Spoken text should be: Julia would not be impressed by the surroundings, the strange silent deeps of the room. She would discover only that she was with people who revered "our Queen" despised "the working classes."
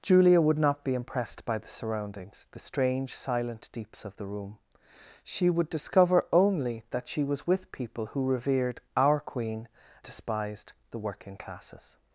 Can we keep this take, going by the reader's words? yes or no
yes